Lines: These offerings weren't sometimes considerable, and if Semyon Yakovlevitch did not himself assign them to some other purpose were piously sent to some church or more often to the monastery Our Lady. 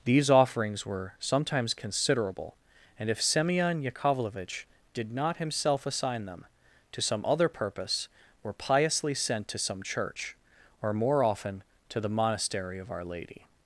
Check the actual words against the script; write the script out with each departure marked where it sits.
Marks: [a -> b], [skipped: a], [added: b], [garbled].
These offerings [weren't -> were] sometimes considerable, and if Semyon Yakovlevitch did not himself assign them to some other purpose were piously sent to some church or more often to the monastery [added: of] Our Lady.